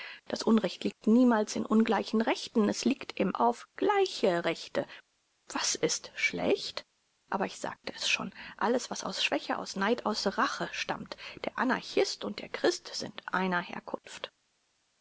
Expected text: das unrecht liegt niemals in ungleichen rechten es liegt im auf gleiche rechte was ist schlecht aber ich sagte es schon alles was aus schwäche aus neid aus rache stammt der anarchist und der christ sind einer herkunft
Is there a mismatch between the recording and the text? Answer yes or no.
no